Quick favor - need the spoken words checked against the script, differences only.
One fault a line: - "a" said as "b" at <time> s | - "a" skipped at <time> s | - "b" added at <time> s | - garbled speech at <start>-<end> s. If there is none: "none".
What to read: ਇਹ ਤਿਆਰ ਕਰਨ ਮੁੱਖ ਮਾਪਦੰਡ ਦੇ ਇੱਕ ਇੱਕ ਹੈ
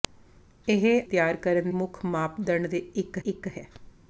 none